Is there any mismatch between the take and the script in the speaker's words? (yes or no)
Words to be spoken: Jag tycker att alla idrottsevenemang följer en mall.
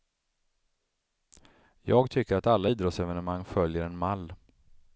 no